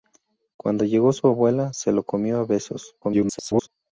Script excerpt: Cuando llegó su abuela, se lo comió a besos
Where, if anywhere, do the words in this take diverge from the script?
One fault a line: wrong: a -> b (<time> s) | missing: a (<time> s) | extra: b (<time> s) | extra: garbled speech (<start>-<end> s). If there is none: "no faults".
extra: garbled speech (3.0-3.7 s)